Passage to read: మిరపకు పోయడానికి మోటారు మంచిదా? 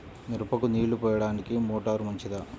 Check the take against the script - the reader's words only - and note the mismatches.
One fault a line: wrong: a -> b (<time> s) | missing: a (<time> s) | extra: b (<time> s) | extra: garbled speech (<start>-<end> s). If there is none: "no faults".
extra: నీళ్ళు (0.6 s)